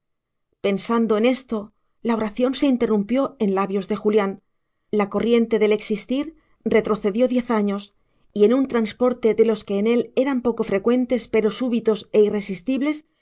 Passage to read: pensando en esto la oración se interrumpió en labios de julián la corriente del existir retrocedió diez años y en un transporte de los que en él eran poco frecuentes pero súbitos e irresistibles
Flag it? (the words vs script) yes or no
no